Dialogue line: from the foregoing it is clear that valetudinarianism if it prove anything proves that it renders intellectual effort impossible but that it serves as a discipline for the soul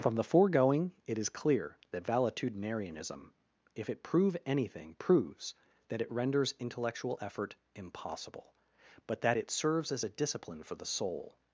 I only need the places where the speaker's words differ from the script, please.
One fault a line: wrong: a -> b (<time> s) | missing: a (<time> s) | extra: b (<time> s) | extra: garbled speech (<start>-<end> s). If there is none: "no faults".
no faults